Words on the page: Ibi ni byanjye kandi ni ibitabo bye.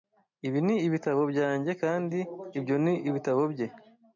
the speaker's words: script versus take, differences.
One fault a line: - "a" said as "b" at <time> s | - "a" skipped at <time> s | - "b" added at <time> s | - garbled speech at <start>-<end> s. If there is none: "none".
- "ibitabo" added at 0.9 s
- "ibyo" added at 2.6 s